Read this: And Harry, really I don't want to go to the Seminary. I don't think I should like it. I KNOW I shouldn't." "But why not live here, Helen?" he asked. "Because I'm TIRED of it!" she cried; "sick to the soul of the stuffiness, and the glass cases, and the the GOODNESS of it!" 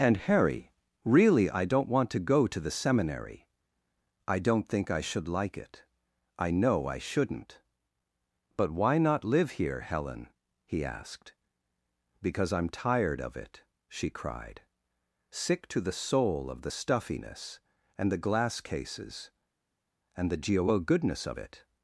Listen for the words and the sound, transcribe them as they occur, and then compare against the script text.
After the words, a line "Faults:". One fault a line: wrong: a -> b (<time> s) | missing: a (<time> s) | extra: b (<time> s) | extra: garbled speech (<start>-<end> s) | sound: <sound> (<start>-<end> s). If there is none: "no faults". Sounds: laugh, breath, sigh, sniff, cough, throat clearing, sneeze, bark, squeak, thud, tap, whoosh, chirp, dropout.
And Harry, really I don't want to go to the Seminary. I don't think I should like it. I KNOW I shouldn't." "But why not live here, Helen?" he asked. "Because I'm TIRED of it!" she cried; "sick to the soul of the stuffiness, and the glass cases, and the geo GOODNESS of it!"
Faults:
wrong: the -> geo (20.4 s)